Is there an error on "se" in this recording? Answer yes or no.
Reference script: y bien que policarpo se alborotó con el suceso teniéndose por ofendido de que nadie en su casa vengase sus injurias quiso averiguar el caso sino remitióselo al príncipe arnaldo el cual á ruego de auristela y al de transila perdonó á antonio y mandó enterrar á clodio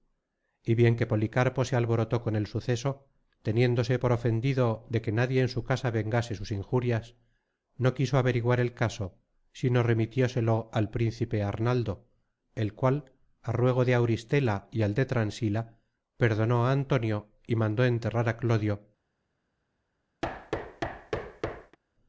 no